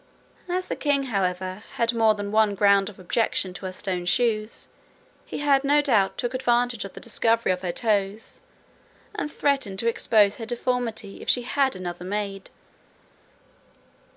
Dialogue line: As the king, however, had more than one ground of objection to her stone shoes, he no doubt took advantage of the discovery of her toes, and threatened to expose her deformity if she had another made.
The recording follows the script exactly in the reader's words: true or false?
true